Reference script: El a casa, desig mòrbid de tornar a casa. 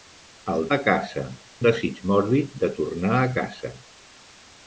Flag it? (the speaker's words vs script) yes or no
no